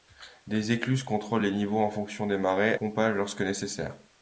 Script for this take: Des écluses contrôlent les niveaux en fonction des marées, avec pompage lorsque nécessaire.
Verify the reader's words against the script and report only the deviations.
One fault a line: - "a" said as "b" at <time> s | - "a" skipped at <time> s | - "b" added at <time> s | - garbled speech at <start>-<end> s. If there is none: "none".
- "avec" skipped at 2.7 s